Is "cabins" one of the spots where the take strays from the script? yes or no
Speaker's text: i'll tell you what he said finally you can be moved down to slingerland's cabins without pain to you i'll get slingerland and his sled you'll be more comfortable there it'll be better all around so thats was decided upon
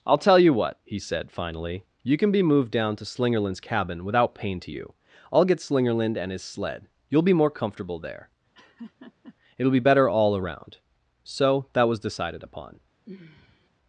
yes